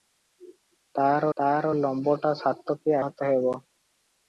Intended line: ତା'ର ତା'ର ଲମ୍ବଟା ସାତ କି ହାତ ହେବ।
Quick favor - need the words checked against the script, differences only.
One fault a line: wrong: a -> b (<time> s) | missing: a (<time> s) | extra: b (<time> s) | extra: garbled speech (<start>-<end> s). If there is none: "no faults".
no faults